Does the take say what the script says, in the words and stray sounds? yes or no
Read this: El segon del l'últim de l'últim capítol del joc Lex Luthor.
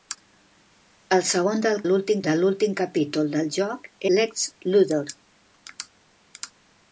yes